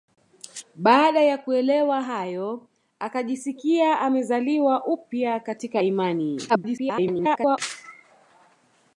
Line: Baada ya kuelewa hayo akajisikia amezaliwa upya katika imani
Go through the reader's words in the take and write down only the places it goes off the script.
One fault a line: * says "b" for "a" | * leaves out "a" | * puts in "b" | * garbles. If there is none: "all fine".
* garbles